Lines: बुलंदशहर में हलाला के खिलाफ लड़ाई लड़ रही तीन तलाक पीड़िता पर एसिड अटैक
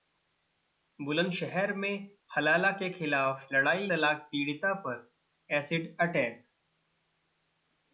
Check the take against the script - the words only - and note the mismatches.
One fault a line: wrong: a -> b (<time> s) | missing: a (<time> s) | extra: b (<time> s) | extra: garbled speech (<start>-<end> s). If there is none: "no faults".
missing: लड़ रही तीन (3.9 s)